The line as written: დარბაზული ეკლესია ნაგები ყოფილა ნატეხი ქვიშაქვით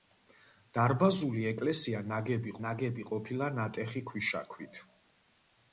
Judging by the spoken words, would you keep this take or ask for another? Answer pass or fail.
fail